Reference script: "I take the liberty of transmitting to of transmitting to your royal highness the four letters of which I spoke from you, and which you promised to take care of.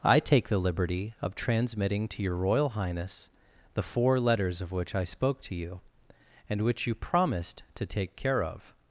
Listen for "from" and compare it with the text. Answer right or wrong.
wrong